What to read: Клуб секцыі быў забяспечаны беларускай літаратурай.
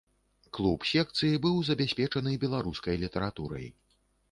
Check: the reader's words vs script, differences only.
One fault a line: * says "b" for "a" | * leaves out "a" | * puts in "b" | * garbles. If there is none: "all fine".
all fine